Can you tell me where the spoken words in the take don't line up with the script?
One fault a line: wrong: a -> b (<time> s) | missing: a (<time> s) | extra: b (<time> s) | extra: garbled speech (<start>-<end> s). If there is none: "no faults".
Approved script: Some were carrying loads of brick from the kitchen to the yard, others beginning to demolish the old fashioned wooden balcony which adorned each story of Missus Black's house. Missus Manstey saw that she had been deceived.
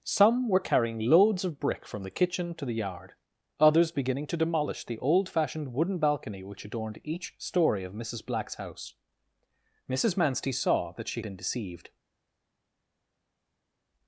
missing: had (11.2 s)